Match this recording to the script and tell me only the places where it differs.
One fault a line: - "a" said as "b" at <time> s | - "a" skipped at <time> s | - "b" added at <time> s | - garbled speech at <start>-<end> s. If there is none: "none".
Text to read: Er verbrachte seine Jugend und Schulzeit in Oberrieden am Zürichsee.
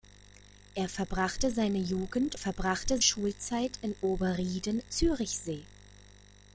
- "und" said as "verbrachte" at 2.3 s
- "am" skipped at 4.8 s